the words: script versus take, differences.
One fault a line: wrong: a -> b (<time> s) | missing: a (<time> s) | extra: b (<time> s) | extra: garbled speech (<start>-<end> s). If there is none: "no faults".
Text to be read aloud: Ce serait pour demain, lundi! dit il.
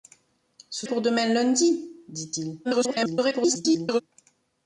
missing: serait (0.9 s)
extra: garbled speech (2.6-4.0 s)